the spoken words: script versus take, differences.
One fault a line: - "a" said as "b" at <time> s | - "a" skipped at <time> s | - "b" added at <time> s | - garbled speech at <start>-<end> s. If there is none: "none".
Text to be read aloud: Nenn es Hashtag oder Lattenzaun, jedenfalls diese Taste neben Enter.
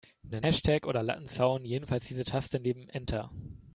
- "es" skipped at 0.5 s